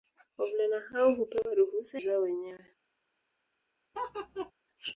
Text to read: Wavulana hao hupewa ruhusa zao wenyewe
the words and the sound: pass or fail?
fail